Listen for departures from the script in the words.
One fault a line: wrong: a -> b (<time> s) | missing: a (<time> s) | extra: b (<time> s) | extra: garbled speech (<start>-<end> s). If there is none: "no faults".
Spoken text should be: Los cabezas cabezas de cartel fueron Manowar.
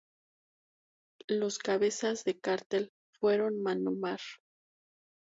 missing: cabezas (2.2 s)